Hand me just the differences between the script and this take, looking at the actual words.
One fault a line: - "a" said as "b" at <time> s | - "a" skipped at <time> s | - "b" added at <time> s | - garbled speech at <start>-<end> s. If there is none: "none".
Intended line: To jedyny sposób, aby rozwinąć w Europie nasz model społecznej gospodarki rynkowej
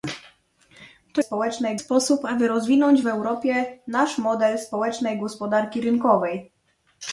- "jedyny" said as "społecznej" at 1.2 s